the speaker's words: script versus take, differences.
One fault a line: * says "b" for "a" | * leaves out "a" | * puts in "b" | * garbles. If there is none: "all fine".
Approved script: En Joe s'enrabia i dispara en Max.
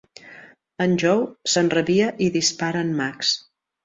all fine